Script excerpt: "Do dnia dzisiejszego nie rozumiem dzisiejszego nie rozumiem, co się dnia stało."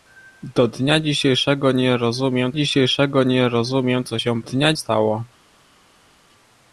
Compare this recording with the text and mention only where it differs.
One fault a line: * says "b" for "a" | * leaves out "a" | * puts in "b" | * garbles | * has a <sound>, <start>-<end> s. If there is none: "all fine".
all fine